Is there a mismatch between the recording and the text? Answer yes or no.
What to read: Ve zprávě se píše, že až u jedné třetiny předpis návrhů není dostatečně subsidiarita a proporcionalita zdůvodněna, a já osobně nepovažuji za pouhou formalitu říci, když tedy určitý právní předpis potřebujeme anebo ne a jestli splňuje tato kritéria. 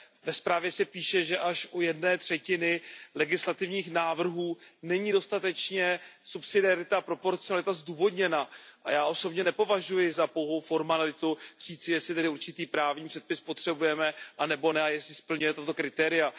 yes